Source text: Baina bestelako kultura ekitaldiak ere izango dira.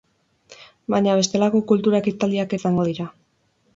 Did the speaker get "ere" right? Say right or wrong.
wrong